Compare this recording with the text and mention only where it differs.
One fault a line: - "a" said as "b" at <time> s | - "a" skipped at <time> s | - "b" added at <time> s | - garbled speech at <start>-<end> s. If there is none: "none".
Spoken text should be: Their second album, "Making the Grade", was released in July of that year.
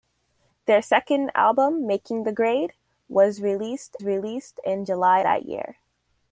- "released" added at 4.0 s
- "of" skipped at 5.2 s